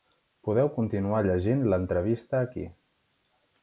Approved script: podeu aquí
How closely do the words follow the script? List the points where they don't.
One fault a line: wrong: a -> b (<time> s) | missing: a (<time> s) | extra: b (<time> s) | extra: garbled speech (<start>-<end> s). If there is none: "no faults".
extra: continuar llegint l'entrevista (0.8 s)